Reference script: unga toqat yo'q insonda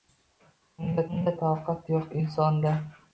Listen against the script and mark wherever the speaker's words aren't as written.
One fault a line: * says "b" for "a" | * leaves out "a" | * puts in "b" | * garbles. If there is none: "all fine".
* puts in "unga"